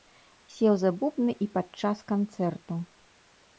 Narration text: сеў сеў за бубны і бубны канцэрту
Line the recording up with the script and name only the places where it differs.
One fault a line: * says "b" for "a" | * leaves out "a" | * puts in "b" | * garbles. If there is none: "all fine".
* leaves out "сеў"
* says "падчас" for "бубны"